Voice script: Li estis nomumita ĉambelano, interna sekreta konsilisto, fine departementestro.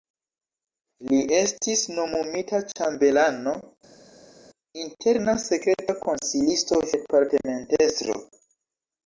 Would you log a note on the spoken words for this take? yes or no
yes